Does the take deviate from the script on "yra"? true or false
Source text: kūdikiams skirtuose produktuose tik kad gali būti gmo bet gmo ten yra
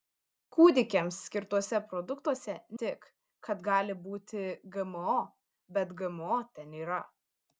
false